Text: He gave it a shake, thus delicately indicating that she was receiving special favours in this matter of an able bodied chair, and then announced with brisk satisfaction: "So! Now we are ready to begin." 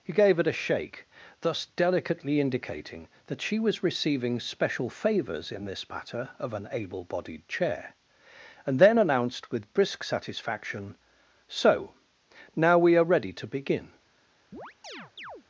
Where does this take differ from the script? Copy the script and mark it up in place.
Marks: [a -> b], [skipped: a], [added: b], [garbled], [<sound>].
He gave it a shake, thus delicately indicating that she was receiving special favours in this matter of an able bodied chair, and then announced with brisk satisfaction: "So! Now we are ready to begin." [chirp]